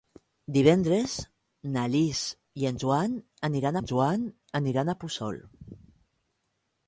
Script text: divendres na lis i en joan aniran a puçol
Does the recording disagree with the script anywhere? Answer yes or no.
yes